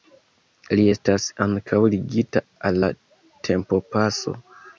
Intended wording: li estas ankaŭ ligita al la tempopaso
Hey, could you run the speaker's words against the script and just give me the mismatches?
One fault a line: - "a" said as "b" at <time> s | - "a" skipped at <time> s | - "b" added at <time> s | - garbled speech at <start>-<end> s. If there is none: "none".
none